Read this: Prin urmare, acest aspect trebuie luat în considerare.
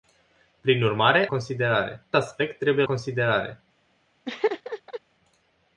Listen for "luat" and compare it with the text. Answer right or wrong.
wrong